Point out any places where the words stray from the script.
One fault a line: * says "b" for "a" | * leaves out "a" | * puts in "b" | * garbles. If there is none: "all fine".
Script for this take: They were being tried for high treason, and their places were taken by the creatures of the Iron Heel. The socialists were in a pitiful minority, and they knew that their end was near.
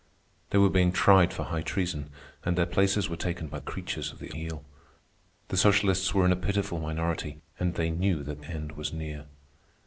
* leaves out "the"
* leaves out "Iron"
* leaves out "their"